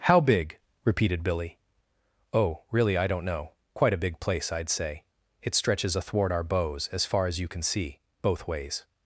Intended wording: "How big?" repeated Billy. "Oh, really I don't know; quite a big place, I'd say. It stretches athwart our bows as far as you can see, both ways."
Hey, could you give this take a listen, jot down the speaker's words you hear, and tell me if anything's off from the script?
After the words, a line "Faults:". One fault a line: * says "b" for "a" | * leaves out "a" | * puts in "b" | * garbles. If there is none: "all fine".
"How big?" repeated Billy. "Oh, really I don't know; quite a big place, I'd say. It stretches athwart our bows as far as you can see, both ways."
Faults:
all fine